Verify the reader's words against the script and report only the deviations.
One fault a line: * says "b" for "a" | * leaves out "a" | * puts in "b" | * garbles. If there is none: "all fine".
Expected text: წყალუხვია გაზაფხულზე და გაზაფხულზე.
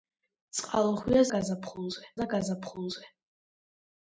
all fine